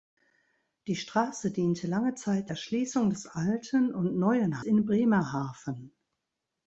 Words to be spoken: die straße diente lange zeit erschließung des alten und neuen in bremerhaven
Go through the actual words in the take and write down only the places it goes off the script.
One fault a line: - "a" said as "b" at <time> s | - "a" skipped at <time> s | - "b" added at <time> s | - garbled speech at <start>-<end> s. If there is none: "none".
none